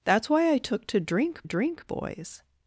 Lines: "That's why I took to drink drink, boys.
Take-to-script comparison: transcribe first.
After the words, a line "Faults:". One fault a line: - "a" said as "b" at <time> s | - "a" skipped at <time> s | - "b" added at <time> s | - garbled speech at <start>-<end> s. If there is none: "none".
"That's why I took to drink drink, boys.
Faults:
none